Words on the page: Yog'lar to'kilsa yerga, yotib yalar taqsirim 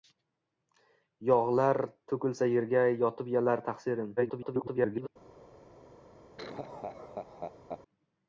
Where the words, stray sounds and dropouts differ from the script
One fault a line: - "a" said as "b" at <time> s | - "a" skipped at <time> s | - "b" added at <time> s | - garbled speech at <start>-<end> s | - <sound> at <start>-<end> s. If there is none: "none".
- garbled speech at 4.2-5.1 s
- laugh at 6.4-7.8 s